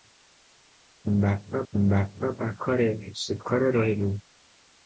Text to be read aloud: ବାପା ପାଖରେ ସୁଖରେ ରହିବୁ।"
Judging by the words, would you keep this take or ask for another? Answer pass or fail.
fail